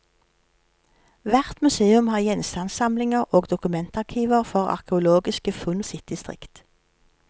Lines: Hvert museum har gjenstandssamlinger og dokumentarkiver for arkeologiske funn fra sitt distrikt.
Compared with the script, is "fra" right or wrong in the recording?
wrong